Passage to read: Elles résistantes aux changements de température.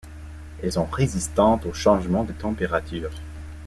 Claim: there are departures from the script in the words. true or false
true